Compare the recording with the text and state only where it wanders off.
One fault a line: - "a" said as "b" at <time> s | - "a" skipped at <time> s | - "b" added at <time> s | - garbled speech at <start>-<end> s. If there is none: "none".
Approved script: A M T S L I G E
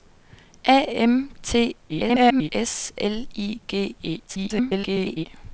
- garbled speech at 1.9-2.5 s
- garbled speech at 4.3-5.3 s